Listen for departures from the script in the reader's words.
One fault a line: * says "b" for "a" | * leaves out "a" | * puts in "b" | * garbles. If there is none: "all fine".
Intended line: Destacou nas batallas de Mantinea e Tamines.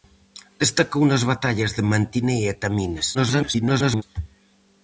* garbles